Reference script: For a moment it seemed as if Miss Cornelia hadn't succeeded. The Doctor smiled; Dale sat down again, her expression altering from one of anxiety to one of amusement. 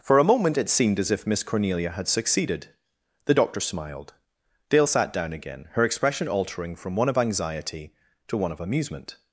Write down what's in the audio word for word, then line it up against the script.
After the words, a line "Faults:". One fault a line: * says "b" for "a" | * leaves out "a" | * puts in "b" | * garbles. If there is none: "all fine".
For a moment it seemed as if Miss Cornelia had succeeded. The Doctor smiled; Dale sat down again, her expression altering from one of anxiety to one of amusement.
Faults:
* says "had" for "hadn't"